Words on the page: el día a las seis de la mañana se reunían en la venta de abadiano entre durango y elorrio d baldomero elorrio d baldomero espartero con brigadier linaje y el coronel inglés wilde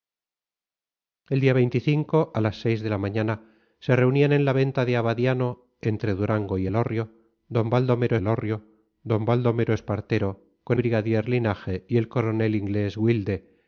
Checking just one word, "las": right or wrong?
right